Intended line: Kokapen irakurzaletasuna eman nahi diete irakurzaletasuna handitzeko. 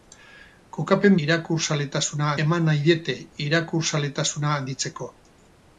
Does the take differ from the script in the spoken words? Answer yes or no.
no